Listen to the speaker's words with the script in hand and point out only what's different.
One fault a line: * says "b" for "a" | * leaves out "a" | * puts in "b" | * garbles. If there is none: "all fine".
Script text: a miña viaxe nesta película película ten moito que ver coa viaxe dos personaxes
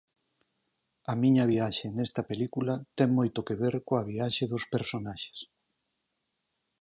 * leaves out "película"